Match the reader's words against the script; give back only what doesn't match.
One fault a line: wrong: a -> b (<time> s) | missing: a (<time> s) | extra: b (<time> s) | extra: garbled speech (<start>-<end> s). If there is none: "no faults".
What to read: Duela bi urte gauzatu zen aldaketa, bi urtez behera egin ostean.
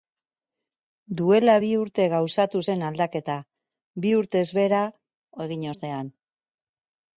no faults